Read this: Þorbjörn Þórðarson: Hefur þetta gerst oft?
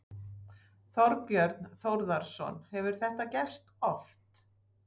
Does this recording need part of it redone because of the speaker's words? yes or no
no